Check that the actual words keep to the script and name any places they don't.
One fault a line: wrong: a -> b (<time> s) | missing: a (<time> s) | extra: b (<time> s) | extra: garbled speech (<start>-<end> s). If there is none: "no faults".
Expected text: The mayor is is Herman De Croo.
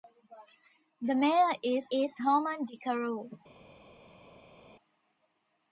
no faults